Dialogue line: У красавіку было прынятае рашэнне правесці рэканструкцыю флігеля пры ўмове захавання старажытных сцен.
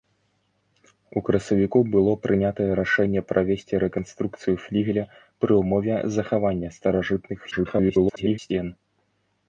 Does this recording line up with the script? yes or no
no